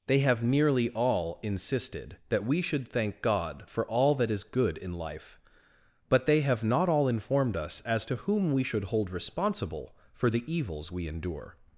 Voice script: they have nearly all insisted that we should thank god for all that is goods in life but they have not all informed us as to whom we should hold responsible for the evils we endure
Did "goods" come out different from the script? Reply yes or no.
yes